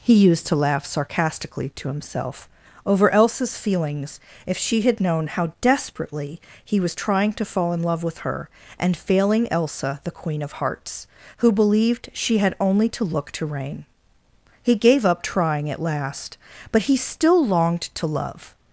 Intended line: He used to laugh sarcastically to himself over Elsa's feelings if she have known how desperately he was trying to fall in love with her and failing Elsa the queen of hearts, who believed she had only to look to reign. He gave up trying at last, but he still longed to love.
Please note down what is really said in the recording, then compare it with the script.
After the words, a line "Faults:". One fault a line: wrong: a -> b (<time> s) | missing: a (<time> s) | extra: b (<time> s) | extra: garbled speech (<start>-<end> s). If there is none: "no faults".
He used to laugh sarcastically to himself over Elsa's feelings if she had known how desperately he was trying to fall in love with her and failing Elsa the queen of hearts, who believed she had only to look to reign. He gave up trying at last, but he still longed to love.
Faults:
wrong: have -> had (4.8 s)